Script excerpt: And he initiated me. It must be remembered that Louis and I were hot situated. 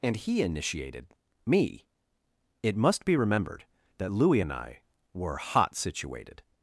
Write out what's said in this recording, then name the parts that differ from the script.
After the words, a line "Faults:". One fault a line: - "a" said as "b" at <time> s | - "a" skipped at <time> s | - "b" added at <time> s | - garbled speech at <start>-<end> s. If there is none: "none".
And he initiated me. It must be remembered that Louis and I were hot situated.
Faults:
none